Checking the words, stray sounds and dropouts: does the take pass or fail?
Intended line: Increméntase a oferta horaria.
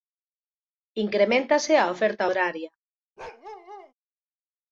fail